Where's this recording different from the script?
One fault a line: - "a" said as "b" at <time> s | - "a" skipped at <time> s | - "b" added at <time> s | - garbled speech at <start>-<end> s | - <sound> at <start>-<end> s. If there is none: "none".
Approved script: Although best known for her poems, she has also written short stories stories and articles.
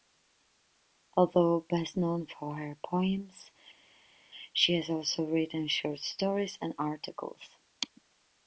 - "stories" skipped at 6.6 s